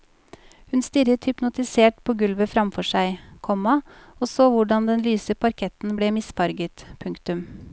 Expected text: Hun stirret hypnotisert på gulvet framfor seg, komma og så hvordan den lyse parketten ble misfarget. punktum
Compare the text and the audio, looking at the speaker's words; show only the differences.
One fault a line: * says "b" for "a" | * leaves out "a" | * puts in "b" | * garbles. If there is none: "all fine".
all fine